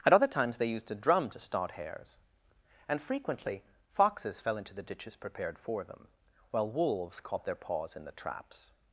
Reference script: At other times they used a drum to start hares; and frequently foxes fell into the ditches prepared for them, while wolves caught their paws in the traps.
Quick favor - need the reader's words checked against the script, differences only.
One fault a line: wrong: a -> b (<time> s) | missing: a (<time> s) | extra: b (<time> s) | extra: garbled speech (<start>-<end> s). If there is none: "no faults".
no faults